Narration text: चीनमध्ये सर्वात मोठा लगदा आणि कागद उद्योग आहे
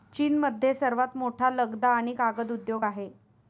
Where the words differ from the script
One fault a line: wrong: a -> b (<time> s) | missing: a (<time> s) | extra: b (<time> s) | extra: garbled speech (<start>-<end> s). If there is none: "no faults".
no faults